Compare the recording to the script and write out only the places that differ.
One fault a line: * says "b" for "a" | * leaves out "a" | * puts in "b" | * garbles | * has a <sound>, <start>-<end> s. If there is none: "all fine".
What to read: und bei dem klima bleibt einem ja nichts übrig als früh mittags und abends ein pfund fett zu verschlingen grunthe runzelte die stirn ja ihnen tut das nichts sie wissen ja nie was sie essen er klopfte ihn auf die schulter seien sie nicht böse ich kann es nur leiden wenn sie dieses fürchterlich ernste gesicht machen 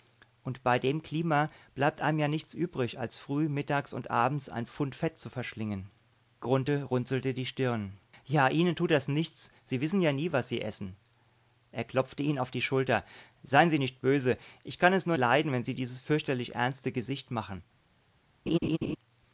* has a laugh, 18.5-19.0 s